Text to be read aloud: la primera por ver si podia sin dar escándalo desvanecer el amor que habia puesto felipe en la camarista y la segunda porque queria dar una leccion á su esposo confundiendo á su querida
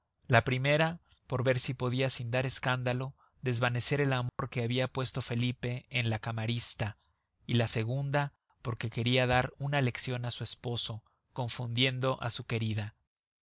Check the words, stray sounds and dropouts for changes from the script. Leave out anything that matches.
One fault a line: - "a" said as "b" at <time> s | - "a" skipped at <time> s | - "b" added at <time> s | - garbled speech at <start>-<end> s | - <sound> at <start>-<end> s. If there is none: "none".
- dropout at 4.3-4.4 s